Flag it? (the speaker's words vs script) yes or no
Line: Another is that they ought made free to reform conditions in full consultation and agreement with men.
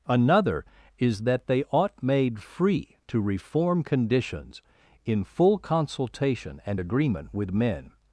no